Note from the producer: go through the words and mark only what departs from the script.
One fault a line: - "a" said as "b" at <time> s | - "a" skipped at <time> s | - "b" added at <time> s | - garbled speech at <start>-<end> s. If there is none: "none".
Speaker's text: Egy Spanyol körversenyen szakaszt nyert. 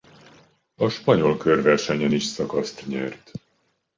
- "Egy" said as "A" at 0.8 s
- "is" added at 2.1 s